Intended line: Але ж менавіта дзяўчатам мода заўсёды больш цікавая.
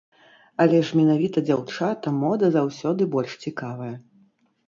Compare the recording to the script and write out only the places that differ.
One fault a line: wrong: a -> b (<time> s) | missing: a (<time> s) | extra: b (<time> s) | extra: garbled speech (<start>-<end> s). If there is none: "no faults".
no faults